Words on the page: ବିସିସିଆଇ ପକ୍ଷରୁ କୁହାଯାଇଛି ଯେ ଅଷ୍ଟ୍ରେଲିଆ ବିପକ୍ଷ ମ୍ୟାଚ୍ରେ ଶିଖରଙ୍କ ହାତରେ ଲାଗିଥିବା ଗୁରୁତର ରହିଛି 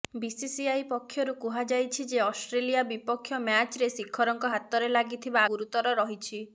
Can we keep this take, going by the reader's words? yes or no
yes